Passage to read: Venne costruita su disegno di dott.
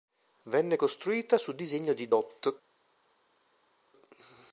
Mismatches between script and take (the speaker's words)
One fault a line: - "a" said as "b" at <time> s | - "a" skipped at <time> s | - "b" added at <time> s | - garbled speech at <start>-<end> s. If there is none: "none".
none